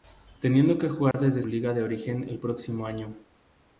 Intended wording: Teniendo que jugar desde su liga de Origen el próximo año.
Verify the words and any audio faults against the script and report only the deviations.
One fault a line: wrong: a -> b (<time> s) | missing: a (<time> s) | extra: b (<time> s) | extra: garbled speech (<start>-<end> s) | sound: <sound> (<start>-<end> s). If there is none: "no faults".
sound: dropout (1.1-1.1 s)
missing: su (1.4 s)